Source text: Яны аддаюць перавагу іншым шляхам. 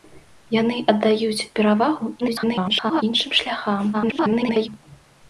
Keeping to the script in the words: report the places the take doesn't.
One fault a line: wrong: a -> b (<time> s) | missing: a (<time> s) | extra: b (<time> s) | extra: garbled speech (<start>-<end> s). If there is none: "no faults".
extra: garbled speech (2.2-3.0 s)
extra: garbled speech (3.9-4.7 s)